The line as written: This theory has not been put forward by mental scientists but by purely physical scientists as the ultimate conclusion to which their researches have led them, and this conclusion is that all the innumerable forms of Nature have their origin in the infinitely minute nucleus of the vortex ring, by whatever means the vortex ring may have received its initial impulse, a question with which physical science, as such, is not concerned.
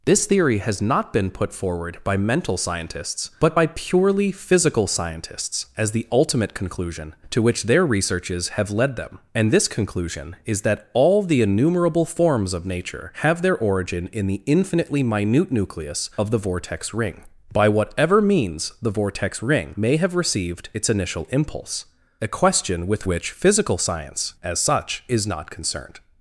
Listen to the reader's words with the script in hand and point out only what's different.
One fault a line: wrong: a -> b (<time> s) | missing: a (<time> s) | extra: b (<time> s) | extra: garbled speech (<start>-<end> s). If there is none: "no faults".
no faults